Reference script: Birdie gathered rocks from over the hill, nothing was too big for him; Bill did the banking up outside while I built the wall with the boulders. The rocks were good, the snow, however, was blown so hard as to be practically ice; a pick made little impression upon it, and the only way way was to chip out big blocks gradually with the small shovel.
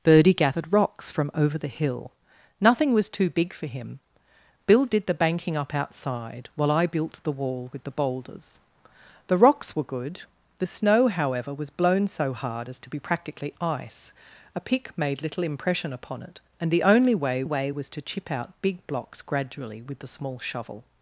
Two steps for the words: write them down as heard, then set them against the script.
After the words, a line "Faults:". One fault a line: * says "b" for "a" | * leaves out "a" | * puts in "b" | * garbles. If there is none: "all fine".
Birdie gathered rocks from over the hill, nothing was too big for him; Bill did the banking up outside while I built the wall with the boulders. The rocks were good, the snow, however, was blown so hard as to be practically ice; a pick made little impression upon it, and the only way way was to chip out big blocks gradually with the small shovel.
Faults:
all fine